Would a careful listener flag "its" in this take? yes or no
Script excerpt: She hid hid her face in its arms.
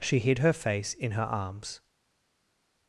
yes